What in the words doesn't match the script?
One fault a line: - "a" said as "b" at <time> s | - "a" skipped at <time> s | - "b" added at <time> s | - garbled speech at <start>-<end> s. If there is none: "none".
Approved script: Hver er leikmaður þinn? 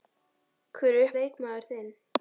none